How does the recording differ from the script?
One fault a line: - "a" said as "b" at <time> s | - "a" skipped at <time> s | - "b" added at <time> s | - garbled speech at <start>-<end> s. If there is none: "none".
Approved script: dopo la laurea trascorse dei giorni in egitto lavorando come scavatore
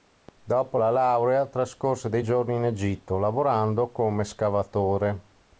none